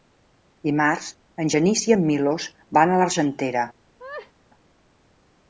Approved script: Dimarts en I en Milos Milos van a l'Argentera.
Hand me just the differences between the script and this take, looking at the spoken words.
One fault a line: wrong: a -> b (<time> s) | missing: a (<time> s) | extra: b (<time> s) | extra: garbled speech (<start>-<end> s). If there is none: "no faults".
extra: Genís (1.5 s)
missing: Milos (2.5 s)